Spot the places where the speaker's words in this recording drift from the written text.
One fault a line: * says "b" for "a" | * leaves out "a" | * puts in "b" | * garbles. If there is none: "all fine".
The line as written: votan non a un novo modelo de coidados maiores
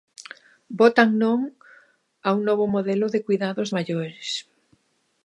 all fine